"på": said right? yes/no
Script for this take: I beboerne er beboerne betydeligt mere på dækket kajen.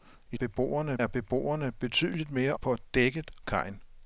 yes